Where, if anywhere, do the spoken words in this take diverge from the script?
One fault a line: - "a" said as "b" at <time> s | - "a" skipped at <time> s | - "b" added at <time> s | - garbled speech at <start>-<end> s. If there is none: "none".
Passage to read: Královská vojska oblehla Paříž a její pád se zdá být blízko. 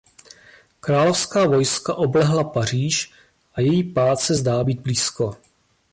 none